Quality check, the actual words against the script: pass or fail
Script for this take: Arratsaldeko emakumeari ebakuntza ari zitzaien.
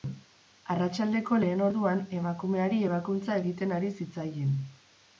fail